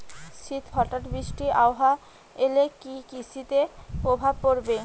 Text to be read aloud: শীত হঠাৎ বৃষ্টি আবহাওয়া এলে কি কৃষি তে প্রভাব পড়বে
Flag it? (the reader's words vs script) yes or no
no